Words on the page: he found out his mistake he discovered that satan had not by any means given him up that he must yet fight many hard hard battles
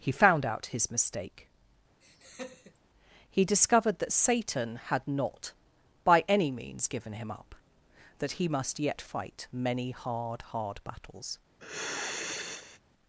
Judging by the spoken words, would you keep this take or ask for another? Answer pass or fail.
pass